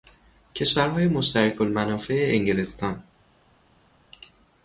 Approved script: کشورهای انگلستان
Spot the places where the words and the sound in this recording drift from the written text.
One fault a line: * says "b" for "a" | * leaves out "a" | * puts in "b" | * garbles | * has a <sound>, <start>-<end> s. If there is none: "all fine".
* puts in "مشترک المنافع"